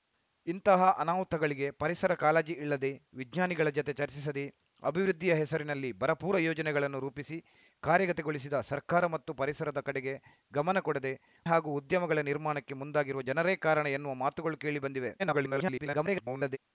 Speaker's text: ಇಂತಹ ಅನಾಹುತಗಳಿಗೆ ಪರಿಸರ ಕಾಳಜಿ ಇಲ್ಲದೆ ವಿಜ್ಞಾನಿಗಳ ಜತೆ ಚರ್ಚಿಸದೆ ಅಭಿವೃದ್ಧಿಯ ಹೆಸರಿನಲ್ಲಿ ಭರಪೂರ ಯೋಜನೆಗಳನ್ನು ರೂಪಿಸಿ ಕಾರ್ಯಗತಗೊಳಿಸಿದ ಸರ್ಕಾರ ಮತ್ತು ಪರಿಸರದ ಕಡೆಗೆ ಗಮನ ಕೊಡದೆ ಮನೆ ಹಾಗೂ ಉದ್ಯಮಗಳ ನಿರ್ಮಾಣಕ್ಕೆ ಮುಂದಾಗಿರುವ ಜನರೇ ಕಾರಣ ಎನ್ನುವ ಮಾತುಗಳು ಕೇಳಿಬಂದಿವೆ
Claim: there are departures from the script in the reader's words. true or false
true